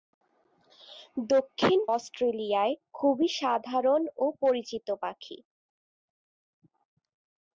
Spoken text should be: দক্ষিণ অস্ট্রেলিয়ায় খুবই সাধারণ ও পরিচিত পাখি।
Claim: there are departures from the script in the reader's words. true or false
false